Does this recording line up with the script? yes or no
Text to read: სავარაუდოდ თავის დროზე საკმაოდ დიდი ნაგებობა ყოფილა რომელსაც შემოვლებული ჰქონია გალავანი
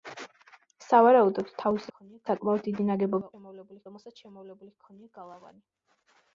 no